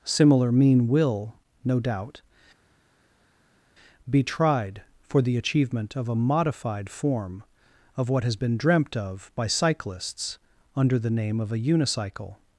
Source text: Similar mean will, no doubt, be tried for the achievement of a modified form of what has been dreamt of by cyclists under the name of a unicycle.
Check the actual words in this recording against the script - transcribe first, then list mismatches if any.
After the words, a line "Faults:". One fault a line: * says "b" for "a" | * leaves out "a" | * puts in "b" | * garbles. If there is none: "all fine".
Similar mean will, no doubt, be tried for the achievement of a modified form of what has been dreamt of by cyclists under the name of a unicycle.
Faults:
all fine